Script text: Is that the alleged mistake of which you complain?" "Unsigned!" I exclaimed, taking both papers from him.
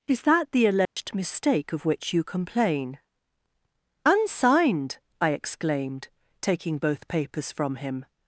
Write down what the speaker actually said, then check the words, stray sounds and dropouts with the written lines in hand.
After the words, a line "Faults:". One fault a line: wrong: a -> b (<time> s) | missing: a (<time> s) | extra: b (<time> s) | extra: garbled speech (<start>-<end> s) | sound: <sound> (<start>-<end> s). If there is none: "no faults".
Is that the alleged mistake of which you complain?" "Unsigned!" I exclaimed, taking both papers from him.
Faults:
sound: dropout (0.8-1.0 s)